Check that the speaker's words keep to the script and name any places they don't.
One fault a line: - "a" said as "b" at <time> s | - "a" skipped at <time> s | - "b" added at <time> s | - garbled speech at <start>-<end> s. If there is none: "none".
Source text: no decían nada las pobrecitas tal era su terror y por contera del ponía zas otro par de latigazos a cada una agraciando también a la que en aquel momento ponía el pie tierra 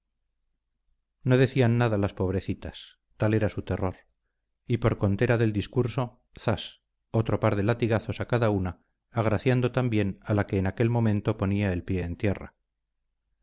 - "ponía" said as "discurso" at 5.5 s
- "en" added at 12.0 s